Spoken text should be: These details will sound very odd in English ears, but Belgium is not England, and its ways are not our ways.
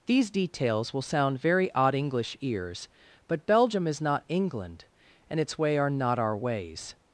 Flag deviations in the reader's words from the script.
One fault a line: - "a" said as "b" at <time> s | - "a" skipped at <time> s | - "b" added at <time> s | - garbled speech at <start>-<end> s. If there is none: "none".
- "in" skipped at 1.9 s
- "ways" said as "way" at 5.6 s